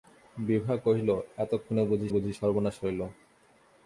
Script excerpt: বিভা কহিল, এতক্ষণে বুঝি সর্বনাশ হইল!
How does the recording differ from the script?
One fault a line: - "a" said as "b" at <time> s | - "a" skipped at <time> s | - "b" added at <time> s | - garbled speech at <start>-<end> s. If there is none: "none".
- "বুঝি" added at 2.1 s